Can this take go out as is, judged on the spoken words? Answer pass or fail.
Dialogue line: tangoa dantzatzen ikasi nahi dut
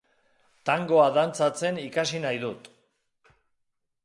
pass